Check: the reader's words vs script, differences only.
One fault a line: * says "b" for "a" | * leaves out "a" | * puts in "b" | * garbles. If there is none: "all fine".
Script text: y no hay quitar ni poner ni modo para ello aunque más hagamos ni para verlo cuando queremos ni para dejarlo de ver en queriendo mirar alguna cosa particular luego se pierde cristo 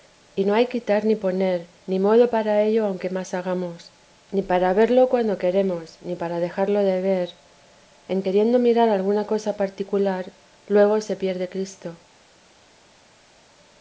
all fine